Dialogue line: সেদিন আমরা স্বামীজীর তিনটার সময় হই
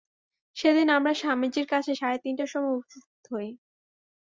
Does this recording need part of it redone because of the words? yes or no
yes